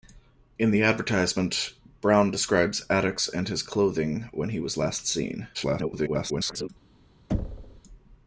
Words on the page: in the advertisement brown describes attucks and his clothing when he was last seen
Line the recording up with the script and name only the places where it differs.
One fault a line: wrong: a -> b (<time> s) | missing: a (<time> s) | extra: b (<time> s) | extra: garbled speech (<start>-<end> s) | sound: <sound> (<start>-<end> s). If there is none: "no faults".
extra: garbled speech (5.5-6.7 s)
sound: thud (7.3-7.8 s)